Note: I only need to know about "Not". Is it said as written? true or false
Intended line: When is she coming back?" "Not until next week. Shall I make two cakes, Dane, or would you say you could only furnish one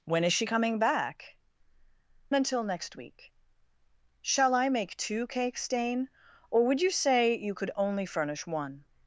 false